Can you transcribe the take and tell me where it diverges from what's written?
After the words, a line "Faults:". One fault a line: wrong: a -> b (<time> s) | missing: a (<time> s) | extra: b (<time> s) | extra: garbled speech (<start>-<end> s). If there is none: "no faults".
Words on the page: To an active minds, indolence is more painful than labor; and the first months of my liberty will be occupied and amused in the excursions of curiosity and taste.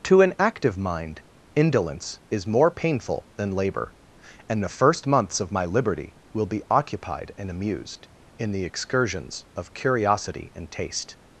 To an active mind, indolence is more painful than labor; and the first months of my liberty will be occupied and amused in the excursions of curiosity and taste.
Faults:
wrong: minds -> mind (0.8 s)